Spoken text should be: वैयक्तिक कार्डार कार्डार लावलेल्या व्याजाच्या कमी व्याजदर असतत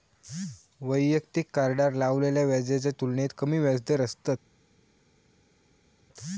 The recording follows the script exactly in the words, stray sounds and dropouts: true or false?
false